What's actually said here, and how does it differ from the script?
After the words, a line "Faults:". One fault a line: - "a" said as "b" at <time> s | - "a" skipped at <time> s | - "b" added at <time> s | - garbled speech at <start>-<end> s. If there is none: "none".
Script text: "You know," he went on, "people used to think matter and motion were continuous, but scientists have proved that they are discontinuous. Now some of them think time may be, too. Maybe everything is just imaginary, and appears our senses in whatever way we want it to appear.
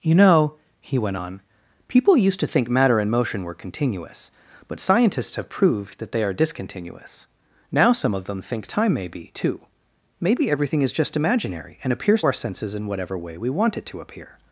"You know," he went on, "people used to think matter and motion were continuous, but scientists have proved that they are discontinuous. Now some of them think time may be, too. Maybe everything is just imaginary, and appears our senses in whatever way we want it to appear.
Faults:
none